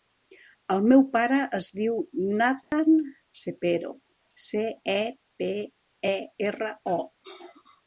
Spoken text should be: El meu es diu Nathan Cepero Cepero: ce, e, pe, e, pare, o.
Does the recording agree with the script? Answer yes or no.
no